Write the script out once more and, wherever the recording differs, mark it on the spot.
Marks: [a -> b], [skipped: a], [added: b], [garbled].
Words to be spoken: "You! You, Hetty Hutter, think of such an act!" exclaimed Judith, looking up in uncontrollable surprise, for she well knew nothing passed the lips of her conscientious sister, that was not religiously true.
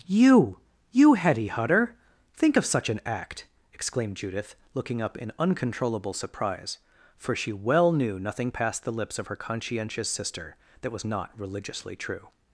"You! You, Hetty Hutter, think of such an act!" exclaimed Judith, looking up in uncontrollable surprise, for she well knew nothing passed the lips of her conscientious sister, that was not religiously true.